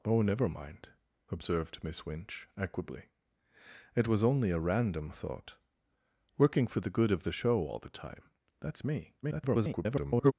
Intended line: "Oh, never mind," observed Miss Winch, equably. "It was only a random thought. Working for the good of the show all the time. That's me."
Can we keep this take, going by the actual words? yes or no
no